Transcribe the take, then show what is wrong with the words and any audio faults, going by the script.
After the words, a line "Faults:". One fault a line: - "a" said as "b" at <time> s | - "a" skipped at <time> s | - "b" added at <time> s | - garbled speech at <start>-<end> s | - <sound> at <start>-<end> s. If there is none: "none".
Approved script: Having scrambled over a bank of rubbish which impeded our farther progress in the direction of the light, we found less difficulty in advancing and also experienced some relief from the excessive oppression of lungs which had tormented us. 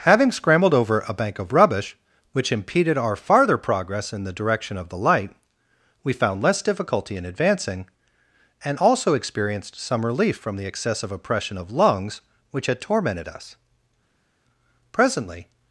Having scrambled over a bank of rubbish which impeded our farther progress in the direction of the light, we found less difficulty in advancing and also experienced some relief from the excessive oppression of lungs which had tormented us. Presently
Faults:
- "Presently" added at 14.9 s